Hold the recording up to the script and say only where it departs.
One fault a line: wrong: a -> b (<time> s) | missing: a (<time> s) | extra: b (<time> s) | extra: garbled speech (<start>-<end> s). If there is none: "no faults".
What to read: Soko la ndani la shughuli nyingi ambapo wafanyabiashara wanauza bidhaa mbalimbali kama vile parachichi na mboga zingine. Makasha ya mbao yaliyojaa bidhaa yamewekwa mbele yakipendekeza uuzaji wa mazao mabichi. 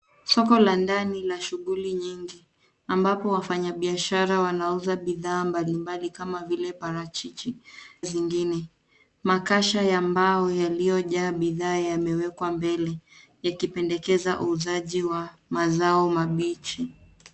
missing: na mboga (7.5 s)